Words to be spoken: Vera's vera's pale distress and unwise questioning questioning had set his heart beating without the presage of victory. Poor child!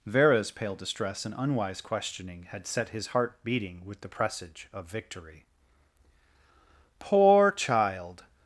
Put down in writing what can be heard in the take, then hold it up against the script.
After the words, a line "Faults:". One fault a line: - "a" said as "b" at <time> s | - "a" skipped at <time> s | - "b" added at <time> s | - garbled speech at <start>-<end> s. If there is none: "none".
Vera's pale distress and unwise questioning had set his heart beating with the presage of victory. Poor child!
Faults:
- "vera's" skipped at 0.5 s
- "questioning" skipped at 2.5 s
- "without" said as "with" at 3.9 s